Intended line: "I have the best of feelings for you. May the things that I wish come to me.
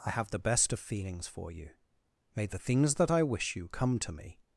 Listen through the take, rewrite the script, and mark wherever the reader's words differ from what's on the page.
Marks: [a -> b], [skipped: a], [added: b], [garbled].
"I have the best of feelings for you. May the things that I wish [added: you] come to me.